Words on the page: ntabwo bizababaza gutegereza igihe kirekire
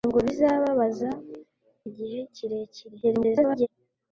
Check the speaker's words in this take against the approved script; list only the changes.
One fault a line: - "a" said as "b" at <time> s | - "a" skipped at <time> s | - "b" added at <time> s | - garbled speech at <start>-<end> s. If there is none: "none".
- "gutegereza" skipped at 1.1 s
- garbled speech at 3.0-3.7 s